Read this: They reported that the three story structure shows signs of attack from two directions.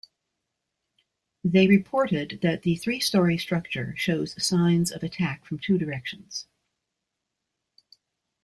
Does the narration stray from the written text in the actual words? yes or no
no